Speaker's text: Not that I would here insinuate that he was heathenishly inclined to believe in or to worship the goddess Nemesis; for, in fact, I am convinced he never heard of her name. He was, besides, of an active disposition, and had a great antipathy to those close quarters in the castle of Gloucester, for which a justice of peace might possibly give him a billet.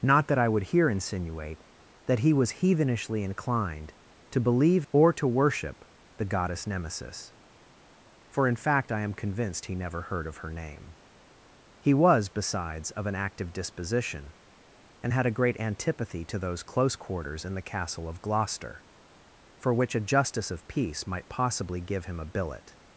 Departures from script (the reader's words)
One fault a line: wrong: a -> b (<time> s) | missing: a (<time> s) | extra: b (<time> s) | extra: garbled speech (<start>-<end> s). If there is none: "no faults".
missing: in (4.9 s)